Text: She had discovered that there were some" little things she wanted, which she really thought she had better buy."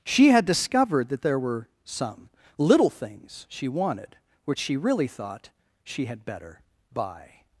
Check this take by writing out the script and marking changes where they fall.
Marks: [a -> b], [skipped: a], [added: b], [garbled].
She had discovered that there were some" little things she wanted, which she really thought she had better buy."